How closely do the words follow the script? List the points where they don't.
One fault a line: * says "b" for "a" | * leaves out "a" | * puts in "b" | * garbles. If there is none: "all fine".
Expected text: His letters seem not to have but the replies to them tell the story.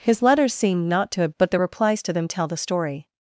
all fine